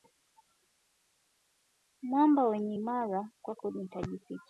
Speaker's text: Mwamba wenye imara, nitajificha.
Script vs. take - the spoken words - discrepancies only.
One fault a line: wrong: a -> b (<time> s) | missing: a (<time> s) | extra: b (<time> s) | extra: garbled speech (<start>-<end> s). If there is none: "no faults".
extra: kwako (3.4 s)